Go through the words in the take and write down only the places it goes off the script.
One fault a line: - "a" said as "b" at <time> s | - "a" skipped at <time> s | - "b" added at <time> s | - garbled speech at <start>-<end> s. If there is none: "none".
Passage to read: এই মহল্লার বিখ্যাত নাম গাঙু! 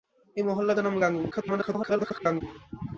- "বিখ্যাত" skipped at 0.8 s
- garbled speech at 1.3-2.4 s